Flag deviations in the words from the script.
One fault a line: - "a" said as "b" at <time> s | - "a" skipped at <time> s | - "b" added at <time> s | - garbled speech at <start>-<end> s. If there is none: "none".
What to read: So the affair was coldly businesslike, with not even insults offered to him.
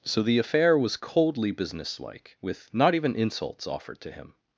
none